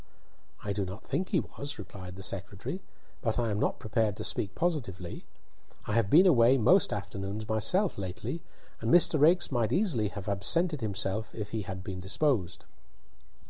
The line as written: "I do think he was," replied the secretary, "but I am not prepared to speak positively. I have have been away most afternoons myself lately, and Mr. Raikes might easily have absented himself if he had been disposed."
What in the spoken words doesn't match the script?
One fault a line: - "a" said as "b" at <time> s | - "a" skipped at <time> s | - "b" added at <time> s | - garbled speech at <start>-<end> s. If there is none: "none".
- "not" added at 0.8 s
- "have" skipped at 6.1 s